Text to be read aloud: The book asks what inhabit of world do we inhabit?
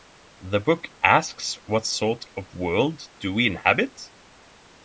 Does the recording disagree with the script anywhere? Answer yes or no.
yes